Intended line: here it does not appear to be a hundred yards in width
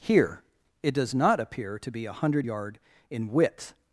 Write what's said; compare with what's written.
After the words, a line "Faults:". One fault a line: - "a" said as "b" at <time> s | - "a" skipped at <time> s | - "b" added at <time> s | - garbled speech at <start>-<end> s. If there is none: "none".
here it does not appear to be a hundred yard in width
Faults:
- "yards" said as "yard" at 2.4 s